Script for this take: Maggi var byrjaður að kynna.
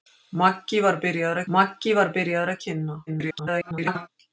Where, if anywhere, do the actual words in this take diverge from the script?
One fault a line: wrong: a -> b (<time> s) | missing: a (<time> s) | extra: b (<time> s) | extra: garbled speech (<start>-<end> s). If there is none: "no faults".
extra: maggi var byrjaður (1.6 s)
extra: garbled speech (3.1-4.1 s)